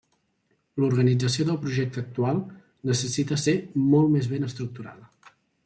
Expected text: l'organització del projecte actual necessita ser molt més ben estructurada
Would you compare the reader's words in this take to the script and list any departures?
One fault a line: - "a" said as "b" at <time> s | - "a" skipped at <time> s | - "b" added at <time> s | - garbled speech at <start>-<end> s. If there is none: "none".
none